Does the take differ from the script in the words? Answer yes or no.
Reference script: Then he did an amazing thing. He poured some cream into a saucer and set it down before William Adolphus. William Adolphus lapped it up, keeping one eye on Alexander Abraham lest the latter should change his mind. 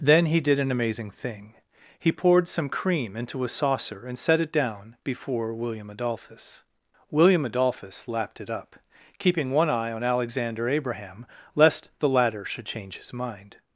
no